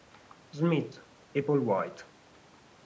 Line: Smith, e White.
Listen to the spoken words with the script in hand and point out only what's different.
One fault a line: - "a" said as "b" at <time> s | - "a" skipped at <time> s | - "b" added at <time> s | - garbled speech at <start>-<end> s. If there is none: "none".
- "Paul" added at 1.4 s